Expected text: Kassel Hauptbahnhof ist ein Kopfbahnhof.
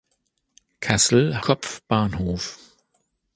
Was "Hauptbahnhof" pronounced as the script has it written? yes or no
no